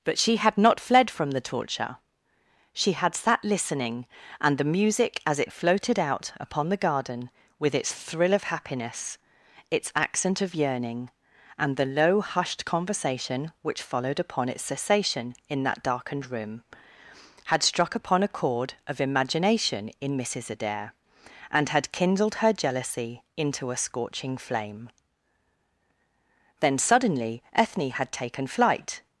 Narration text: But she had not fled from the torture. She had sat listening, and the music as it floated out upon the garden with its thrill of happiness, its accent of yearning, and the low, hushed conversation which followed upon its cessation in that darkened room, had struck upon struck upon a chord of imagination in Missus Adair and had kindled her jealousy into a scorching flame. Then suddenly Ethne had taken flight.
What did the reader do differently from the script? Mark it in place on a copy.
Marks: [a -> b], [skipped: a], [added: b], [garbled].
But she had not fled from the torture. She had sat listening, and the music as it floated out upon the garden with its thrill of happiness, its accent of yearning, and the low, hushed conversation which followed upon its cessation in that darkened room, had struck upon [skipped: struck upon] a chord of imagination in Missus Adair and had kindled her jealousy into a scorching flame. Then suddenly Ethne had taken flight.